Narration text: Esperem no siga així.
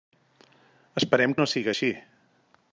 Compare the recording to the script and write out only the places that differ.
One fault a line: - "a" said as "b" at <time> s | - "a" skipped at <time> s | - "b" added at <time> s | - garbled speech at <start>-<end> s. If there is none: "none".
none